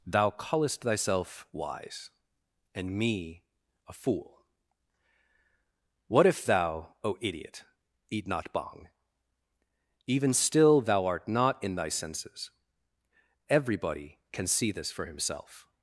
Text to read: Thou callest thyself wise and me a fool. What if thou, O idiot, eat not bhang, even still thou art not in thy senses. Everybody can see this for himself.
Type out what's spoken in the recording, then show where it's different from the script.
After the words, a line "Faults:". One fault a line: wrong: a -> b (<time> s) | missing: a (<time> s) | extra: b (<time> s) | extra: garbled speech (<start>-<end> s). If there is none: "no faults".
Thou callest thyself wise and me a fool. What if thou, O idiot, eat not bhang, even still thou art not in thy senses. Everybody can see this for himself.
Faults:
no faults